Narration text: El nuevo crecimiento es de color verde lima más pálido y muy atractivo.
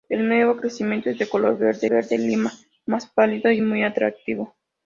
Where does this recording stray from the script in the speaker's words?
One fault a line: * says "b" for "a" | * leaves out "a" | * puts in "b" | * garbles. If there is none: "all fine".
* puts in "verde"